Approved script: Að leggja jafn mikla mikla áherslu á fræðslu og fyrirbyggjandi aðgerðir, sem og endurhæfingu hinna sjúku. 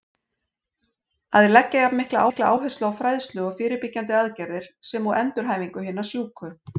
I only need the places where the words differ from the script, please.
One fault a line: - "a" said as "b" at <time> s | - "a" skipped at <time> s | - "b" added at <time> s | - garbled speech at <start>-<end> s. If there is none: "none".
none